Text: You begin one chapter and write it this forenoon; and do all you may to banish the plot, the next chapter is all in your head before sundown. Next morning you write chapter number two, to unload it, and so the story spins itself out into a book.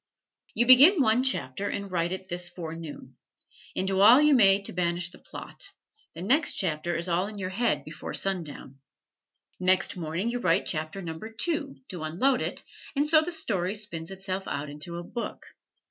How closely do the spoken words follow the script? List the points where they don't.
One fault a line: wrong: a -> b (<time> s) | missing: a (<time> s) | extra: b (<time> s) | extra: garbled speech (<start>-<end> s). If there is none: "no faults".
no faults